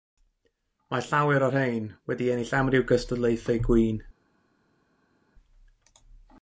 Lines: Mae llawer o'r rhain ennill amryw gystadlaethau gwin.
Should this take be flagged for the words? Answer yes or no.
yes